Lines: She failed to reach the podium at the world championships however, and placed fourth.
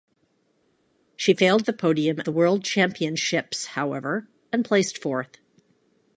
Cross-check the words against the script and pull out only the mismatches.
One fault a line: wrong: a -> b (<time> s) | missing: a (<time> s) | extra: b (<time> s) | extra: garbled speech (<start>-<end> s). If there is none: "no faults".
missing: to reach (1.7 s)
missing: at (2.2 s)